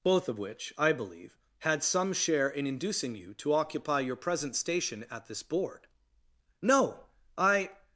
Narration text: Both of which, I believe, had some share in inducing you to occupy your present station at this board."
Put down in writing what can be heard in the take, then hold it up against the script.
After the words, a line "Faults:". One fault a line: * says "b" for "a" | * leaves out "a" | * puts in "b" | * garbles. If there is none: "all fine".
Both of which, I believe, had some share in inducing you to occupy your present station at this board." "No! I
Faults:
* puts in "No I"